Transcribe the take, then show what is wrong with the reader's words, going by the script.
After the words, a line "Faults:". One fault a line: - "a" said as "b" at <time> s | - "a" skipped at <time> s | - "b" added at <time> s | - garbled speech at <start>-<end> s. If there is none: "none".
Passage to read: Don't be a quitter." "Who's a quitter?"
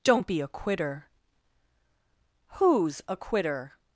Don't be a quitter." "Who's a quitter?"
Faults:
none